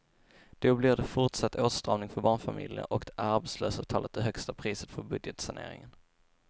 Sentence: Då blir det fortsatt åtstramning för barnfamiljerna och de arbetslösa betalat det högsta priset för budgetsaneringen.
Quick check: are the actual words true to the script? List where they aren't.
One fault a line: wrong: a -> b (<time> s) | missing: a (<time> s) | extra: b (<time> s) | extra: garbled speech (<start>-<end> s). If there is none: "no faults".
no faults